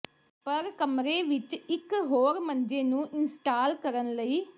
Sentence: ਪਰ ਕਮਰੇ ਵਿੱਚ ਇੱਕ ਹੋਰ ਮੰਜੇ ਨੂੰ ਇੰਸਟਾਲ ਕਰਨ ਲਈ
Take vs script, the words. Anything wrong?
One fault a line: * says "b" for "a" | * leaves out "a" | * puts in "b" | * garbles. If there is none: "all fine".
all fine